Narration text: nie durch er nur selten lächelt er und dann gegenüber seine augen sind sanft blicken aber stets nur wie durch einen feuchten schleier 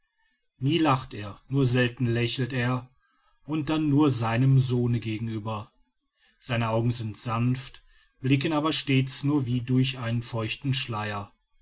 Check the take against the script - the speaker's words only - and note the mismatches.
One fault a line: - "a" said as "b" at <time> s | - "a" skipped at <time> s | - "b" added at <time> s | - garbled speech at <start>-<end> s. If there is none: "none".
- "durch" said as "lacht" at 0.8 s
- "nur seinem sohne" added at 3.9 s